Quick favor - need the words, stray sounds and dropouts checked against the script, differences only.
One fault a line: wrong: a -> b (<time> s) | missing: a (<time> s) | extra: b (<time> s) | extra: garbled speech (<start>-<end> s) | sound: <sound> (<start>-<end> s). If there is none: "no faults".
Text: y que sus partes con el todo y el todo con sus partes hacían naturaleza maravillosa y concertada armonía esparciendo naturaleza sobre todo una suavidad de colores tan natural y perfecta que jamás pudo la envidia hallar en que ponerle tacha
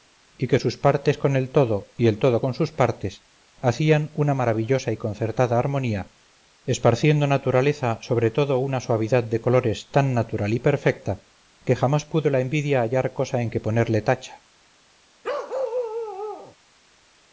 wrong: naturaleza -> una (4.1 s)
extra: cosa (13.1 s)
sound: bark (15.2-16.6 s)